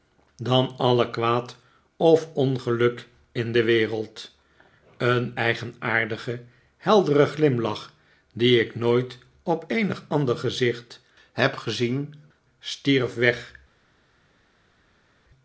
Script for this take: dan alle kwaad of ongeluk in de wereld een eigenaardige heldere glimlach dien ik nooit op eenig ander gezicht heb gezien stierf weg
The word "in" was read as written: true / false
true